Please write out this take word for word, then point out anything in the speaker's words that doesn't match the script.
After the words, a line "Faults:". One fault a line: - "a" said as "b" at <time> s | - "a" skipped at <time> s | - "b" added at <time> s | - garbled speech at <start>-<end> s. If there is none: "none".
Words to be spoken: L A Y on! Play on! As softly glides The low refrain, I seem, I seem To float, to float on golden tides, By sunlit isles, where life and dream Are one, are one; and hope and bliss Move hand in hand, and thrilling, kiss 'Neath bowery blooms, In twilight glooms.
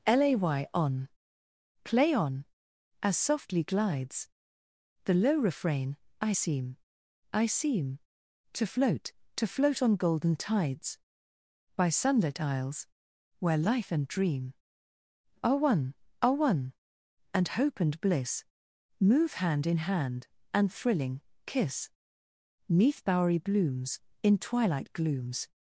L A Y on! Play on! As softly glides The low refrain, I seem, I seem To float, to float on golden tides, By sunlit isles, where life and dream Are one, are one; and hope and bliss Move hand in hand, and thrilling, kiss 'Neath bowery blooms, In twilight glooms.
Faults:
none